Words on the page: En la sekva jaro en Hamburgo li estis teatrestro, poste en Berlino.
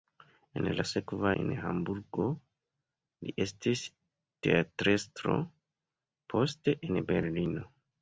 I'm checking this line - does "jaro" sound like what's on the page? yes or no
no